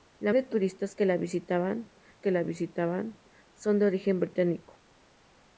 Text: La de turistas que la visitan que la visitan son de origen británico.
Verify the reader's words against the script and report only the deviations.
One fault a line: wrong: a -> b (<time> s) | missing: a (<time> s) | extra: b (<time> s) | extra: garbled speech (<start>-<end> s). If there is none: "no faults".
no faults